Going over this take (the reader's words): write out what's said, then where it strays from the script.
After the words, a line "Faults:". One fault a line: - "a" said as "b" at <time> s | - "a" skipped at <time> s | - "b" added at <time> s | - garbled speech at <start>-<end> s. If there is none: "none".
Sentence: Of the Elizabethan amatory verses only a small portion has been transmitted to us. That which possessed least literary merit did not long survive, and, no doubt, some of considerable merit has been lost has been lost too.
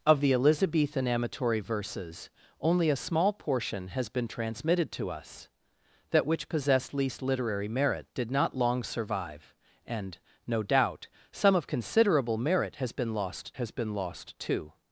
Of the Elizabethan amatory verses only a small portion has been transmitted to us. That which possessed least literary merit did not long survive, and, no doubt, some of considerable merit has been lost has been lost too.
Faults:
none